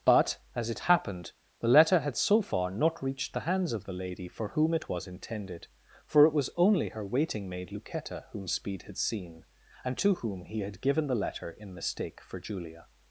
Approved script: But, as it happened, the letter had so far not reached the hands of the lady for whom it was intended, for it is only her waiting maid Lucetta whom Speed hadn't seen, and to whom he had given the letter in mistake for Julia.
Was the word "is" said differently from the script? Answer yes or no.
yes